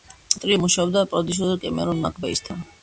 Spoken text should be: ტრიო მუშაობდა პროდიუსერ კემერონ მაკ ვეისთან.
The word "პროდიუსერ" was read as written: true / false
true